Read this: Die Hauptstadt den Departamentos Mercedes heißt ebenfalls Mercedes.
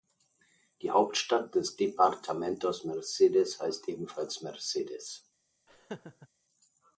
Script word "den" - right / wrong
wrong